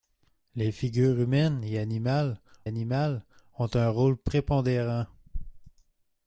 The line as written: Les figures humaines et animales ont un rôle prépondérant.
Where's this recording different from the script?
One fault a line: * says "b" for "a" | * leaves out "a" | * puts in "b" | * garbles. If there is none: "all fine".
* puts in "animales"